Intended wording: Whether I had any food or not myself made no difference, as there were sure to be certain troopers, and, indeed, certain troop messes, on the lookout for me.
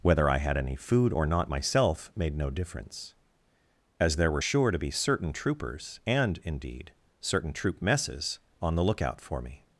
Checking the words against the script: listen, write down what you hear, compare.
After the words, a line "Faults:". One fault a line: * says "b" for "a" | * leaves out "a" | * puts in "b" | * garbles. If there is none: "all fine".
Whether I had any food or not myself made no difference, as there were sure to be certain troopers, and, indeed, certain troop messes, on the lookout for me.
Faults:
all fine